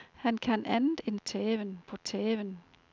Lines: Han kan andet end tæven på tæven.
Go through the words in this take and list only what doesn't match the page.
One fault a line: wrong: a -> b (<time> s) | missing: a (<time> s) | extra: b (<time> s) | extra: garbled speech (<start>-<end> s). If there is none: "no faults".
no faults